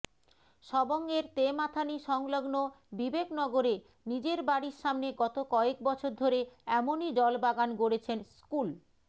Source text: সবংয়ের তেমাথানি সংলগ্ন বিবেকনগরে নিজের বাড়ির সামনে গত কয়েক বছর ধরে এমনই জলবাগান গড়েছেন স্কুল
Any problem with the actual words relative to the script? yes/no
no